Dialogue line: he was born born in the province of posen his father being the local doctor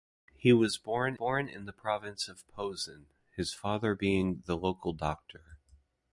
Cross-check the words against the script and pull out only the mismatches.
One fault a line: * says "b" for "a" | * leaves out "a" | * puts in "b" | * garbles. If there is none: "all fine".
all fine